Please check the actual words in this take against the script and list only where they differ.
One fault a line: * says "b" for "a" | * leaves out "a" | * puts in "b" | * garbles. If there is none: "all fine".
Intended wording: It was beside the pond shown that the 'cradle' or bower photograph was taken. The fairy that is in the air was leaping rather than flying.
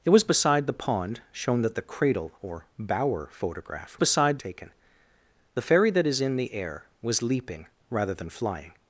* says "beside" for "was"